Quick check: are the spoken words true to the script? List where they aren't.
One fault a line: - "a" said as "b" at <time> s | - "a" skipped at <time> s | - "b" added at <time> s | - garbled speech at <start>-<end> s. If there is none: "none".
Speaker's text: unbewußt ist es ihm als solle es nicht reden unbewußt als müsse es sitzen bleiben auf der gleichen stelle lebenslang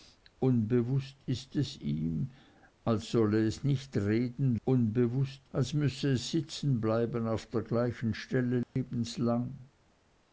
none